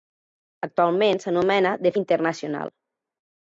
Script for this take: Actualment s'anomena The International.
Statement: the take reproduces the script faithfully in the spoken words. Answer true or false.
true